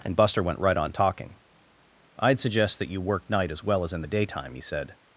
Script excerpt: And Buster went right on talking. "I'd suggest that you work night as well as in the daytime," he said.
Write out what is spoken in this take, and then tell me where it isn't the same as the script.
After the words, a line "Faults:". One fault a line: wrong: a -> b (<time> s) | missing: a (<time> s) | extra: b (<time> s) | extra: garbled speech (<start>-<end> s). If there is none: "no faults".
And Buster went right on talking. "I'd suggest that you work night as well as in the daytime," he said.
Faults:
no faults